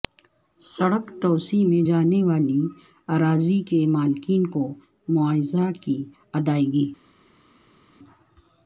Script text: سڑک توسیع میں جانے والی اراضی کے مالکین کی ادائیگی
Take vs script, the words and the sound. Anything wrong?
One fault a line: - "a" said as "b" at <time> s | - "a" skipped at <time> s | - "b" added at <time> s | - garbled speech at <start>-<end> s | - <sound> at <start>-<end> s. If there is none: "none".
- "کو معاوضہ" added at 4.5 s